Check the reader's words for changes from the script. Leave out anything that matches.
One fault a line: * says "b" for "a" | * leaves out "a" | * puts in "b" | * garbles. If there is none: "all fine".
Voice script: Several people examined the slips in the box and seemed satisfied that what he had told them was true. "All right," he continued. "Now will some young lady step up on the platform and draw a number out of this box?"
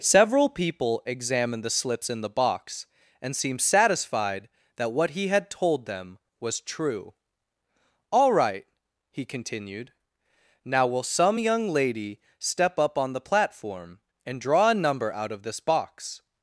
all fine